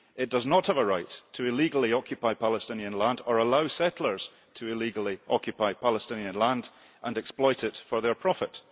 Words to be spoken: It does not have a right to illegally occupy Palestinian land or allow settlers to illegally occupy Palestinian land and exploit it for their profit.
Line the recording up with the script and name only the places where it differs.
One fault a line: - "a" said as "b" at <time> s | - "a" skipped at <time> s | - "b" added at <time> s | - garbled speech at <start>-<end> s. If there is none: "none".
none